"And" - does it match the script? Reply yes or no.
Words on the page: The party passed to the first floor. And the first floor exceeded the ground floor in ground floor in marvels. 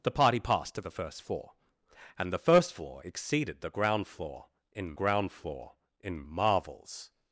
yes